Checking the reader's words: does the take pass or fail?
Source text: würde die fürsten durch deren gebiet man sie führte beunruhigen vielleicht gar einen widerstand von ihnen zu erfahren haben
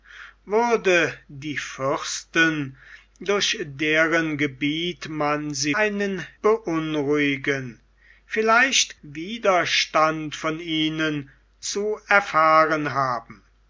fail